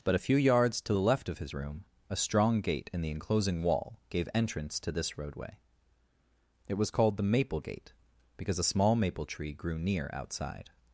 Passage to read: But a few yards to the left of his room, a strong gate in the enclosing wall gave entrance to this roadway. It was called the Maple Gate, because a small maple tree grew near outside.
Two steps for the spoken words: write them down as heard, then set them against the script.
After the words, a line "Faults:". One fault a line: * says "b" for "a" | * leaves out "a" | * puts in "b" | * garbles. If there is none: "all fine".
But a few yards to the left of his room, a strong gate in the enclosing wall gave entrance to this roadway. It was called the Maple Gate, because a small maple tree grew near outside.
Faults:
all fine